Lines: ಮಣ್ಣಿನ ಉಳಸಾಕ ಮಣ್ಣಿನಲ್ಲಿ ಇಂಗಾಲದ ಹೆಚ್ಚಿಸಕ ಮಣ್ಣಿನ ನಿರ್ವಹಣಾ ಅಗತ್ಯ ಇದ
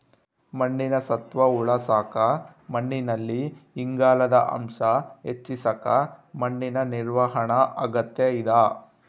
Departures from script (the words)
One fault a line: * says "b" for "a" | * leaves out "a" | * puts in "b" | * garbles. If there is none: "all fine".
* puts in "ಸತ್ವ"
* puts in "ಅಂಶ"